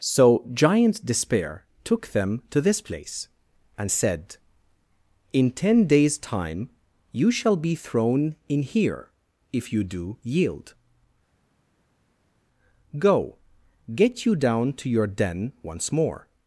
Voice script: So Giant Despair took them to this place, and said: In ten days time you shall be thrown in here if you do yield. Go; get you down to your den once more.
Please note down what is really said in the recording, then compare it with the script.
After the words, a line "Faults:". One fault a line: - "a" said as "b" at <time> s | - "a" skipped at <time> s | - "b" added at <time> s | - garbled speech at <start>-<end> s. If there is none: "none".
So Giant Despair took them to this place, and said: In ten days time you shall be thrown in here if you do yield. Go; get you down to your den once more.
Faults:
none